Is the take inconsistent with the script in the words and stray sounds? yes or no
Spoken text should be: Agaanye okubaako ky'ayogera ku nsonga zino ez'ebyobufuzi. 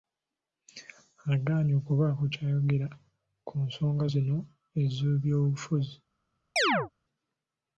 yes